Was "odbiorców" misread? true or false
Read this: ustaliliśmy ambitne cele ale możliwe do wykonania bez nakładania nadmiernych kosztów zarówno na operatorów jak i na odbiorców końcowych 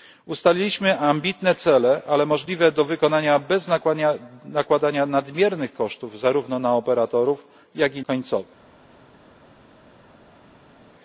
true